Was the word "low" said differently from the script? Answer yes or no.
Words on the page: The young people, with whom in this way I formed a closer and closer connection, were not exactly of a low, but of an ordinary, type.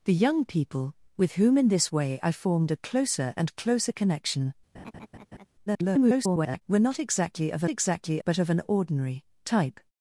yes